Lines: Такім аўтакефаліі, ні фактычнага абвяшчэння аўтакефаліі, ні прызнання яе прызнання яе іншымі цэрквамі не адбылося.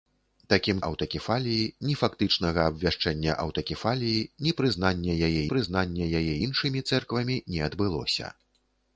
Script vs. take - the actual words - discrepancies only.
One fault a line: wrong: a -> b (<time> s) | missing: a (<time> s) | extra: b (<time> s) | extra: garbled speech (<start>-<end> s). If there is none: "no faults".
no faults